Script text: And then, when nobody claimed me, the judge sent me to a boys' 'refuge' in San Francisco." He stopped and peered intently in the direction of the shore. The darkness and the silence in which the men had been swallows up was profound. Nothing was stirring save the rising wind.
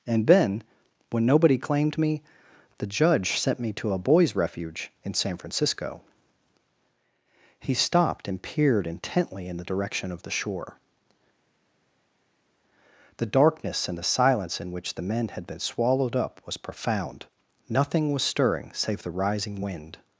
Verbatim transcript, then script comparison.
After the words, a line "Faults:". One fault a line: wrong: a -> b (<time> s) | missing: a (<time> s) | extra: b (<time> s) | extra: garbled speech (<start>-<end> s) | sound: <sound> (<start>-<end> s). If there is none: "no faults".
And then, when nobody claimed me, the judge sent me to a boys' 'refuge' in San Francisco." He stopped and peered intently in the direction of the shore. The darkness and the silence in which the men had been swallowed up was profound. Nothing was stirring save the rising wind.
Faults:
wrong: swallows -> swallowed (15.6 s)